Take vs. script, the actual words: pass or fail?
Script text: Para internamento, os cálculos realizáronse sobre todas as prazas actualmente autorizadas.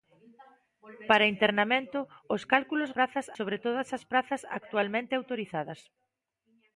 fail